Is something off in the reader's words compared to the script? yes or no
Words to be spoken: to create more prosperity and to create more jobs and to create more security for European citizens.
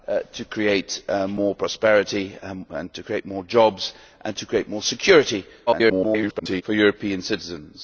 yes